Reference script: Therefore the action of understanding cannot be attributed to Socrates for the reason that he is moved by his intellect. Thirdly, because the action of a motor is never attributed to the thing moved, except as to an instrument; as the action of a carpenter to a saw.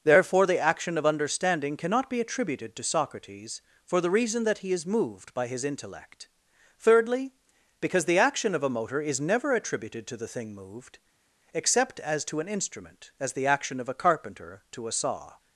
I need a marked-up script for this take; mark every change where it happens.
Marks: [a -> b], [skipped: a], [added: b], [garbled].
Therefore the action of understanding cannot be attributed to Socrates for the reason that he is moved by his intellect. Thirdly, because the action of a motor is never attributed to the thing moved, except as to an instrument; as the action of a carpenter to a saw.